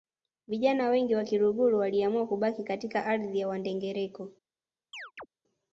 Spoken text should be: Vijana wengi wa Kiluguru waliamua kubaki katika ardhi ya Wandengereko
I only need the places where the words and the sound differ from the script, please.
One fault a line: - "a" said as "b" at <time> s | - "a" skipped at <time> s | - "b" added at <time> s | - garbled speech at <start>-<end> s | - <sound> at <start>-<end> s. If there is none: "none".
- chirp at 4.9-5.3 s